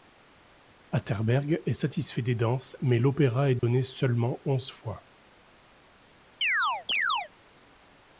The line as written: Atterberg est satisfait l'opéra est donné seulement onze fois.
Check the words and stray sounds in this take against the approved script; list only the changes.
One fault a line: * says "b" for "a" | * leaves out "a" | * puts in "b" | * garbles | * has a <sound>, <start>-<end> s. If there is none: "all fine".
* puts in "des danses mais"
* has a dropout, 3.6-3.6 s
* has a chirp, 6.4-7.3 s